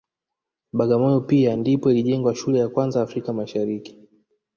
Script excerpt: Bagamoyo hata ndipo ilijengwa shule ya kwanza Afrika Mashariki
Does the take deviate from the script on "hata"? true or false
true